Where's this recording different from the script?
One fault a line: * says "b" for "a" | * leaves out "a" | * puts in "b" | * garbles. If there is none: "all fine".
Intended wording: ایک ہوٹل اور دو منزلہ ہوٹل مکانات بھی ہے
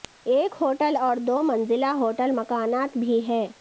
all fine